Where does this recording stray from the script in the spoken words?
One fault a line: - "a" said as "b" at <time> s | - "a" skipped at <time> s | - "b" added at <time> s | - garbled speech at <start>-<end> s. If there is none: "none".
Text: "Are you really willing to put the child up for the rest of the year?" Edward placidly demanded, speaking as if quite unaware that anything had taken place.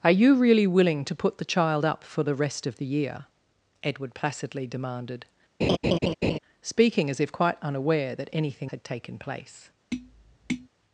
none